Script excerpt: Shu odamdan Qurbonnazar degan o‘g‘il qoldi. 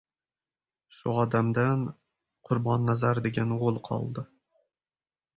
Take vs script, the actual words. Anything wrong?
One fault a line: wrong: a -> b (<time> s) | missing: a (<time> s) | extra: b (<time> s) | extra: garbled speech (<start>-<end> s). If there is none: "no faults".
no faults